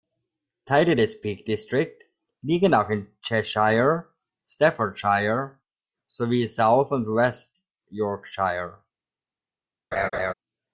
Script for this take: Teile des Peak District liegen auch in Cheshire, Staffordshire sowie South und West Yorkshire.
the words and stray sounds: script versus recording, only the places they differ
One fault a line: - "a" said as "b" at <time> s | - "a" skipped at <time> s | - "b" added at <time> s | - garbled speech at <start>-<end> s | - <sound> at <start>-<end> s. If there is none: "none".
- laugh at 9.9-10.3 s